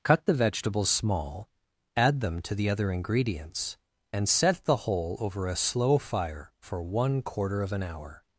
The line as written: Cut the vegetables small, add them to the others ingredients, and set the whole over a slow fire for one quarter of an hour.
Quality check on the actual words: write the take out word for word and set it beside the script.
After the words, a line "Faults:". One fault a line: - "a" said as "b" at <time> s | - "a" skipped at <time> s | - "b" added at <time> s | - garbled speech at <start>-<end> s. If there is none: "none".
Cut the vegetables small, add them to the other ingredients, and set the whole over a slow fire for one quarter of an hour.
Faults:
- "others" said as "other" at 2.7 s